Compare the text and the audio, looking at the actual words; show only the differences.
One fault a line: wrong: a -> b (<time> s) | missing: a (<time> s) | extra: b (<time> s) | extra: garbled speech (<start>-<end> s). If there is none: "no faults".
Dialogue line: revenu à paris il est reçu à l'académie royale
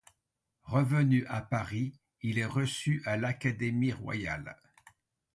no faults